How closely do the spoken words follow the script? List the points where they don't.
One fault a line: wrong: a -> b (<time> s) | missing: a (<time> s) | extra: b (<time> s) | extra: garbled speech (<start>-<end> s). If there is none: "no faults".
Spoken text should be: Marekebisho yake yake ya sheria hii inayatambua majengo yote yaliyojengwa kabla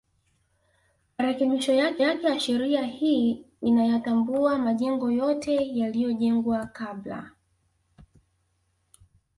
no faults